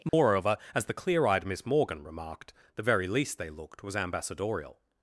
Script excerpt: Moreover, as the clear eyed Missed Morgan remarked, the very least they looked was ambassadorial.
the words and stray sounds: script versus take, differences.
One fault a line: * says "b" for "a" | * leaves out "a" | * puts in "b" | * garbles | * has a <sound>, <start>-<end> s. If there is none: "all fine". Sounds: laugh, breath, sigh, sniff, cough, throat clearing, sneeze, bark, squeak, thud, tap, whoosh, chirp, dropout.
* has a dropout, 0.1-0.1 s
* says "Miss" for "Missed"